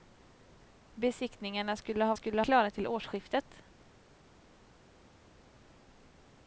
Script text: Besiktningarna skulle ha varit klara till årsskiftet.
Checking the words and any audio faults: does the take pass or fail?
fail